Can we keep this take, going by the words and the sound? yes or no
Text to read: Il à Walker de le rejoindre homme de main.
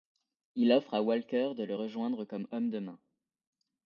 no